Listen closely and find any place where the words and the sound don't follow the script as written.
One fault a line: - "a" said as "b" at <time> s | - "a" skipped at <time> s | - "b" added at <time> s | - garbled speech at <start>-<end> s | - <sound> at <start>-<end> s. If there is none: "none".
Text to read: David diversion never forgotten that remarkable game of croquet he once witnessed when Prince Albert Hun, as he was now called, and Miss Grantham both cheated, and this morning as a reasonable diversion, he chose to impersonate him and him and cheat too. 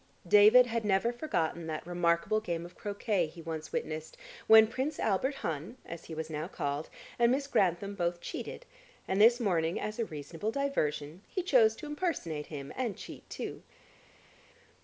- "diversion" said as "had" at 0.7 s
- "him and" skipped at 13.0 s